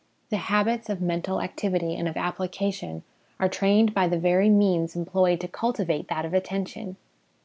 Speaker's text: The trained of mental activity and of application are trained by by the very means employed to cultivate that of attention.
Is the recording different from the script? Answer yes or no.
yes